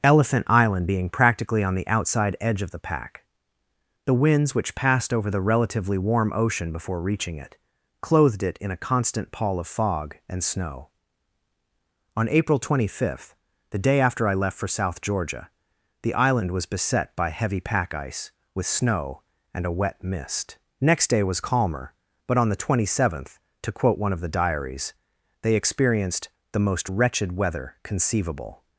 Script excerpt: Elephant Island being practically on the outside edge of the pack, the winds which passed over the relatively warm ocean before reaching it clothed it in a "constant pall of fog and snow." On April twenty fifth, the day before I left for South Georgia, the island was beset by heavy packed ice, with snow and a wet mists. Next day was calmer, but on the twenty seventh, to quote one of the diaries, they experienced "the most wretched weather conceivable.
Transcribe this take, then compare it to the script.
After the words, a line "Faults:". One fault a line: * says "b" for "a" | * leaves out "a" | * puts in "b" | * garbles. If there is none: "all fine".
Elephant Island being practically on the outside edge of the pack, the winds which passed over the relatively warm ocean before reaching it clothed it in a "constant pall of fog and snow." On April twenty fifth, the day after I left for South Georgia, the island was beset by heavy pack ice, with snow and a wet mist. Next day was calmer, but on the twenty seventh, to quote one of the diaries, they experienced "the most wretched weather conceivable.
Faults:
* says "after" for "before"
* says "pack" for "packed"
* says "mist" for "mists"